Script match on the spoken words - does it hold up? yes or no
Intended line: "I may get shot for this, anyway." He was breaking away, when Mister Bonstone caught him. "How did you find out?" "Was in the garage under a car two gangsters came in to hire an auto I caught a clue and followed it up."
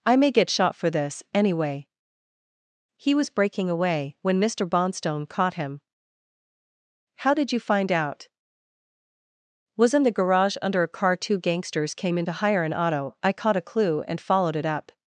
yes